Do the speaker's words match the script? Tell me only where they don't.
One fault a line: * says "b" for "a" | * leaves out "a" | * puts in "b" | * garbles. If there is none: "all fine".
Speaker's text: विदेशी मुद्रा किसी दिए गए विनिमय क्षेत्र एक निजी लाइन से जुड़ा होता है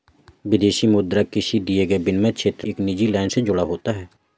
all fine